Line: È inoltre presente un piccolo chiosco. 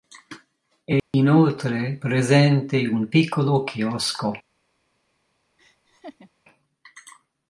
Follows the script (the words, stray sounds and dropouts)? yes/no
no